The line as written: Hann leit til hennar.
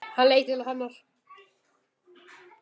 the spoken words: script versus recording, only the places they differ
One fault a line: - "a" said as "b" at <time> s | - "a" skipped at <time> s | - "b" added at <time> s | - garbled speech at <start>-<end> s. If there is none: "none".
none